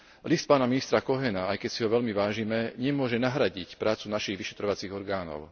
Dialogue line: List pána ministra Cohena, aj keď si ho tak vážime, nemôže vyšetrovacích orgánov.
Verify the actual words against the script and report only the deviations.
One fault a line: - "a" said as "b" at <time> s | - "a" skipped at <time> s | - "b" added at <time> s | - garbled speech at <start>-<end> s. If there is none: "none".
- "tak" said as "veľmi" at 1.9 s
- "nahradiť prácu našich" added at 3.2 s